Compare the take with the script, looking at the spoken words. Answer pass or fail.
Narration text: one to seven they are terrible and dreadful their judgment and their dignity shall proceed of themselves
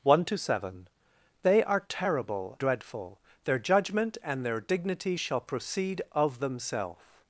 fail